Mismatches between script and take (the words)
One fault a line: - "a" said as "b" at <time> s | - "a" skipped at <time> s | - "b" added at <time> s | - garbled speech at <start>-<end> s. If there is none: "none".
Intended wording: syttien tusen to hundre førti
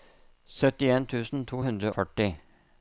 none